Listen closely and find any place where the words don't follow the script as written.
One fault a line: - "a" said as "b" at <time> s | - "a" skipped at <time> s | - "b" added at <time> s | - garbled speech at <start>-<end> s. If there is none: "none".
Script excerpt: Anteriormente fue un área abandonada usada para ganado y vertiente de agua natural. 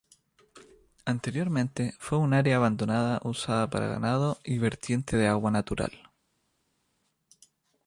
none